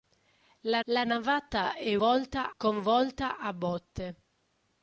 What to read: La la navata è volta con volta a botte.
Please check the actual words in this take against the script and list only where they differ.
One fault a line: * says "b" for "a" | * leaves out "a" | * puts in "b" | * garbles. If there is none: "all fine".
all fine